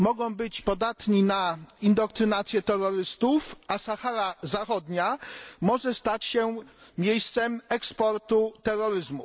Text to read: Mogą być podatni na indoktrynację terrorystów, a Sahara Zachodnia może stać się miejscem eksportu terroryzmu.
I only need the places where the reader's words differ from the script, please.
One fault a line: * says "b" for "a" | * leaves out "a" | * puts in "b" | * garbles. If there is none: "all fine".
all fine